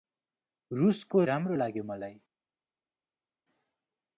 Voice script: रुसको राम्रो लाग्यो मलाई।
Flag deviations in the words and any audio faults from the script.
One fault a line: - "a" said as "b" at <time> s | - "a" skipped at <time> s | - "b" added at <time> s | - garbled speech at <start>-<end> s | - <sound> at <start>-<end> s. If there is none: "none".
none